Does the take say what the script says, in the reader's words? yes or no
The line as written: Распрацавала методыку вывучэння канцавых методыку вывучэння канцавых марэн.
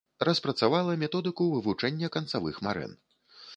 no